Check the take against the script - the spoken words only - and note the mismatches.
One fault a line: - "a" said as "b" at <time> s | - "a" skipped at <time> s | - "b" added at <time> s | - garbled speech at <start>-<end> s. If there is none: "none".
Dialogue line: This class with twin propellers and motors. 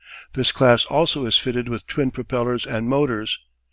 - "also is fitted" added at 0.8 s